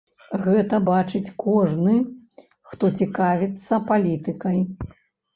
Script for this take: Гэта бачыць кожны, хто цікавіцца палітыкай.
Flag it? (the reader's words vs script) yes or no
no